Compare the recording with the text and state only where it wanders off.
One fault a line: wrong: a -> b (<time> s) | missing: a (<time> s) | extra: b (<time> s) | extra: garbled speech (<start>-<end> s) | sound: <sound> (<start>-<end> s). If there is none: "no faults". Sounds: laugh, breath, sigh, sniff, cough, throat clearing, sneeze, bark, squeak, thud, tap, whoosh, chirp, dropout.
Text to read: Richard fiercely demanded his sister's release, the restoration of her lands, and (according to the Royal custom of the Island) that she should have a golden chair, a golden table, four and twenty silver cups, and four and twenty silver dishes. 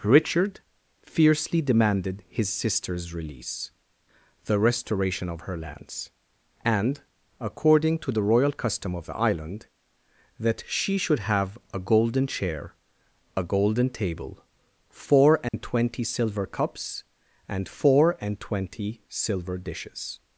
sound: dropout (15.5-15.5 s)